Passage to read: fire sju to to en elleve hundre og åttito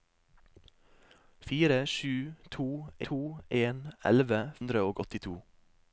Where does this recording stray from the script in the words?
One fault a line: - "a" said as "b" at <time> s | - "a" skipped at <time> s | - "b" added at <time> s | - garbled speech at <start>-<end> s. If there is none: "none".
none